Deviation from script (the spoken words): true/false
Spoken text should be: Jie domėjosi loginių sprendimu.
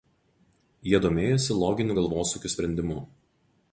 true